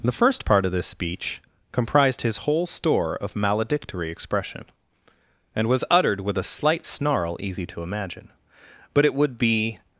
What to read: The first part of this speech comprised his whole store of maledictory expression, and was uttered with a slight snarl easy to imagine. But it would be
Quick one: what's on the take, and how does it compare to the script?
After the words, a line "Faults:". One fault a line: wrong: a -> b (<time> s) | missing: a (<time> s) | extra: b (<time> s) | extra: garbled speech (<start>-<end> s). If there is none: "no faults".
The first part of this speech comprised his whole store of maledictory expression, and was uttered with a slight snarl easy to imagine. But it would be
Faults:
no faults